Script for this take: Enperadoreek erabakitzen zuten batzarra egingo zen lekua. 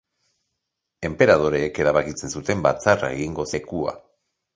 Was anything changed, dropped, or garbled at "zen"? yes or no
yes